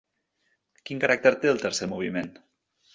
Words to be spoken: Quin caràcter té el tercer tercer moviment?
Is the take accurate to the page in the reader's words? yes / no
no